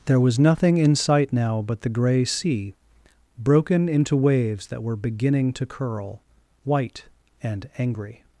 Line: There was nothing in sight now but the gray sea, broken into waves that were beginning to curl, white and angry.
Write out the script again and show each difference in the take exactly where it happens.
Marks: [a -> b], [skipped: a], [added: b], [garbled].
There was nothing in sight now but the gray sea, broken into waves that were beginning to curl, white and angry.